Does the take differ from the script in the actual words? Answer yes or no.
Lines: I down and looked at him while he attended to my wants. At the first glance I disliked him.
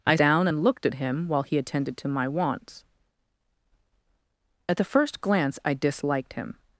no